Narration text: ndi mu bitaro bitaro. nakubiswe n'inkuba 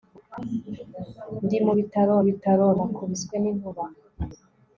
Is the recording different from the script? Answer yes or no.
no